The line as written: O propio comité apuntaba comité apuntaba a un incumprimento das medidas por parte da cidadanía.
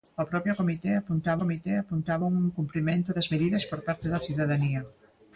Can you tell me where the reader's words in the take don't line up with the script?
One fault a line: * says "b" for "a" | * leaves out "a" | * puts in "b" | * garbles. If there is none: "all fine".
all fine